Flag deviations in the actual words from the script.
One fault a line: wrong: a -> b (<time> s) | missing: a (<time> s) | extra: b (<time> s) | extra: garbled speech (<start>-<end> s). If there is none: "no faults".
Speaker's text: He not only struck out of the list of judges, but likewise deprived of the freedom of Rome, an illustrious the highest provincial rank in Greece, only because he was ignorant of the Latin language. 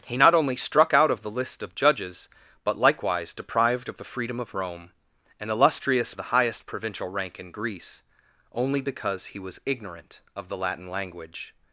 no faults